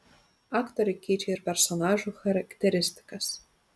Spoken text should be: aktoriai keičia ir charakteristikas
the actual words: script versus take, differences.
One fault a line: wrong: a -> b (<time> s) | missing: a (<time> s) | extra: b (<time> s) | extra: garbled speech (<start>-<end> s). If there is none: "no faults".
extra: personažų (1.5 s)